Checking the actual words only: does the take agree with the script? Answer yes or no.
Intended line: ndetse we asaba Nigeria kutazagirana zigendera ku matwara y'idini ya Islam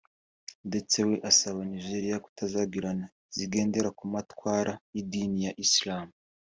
yes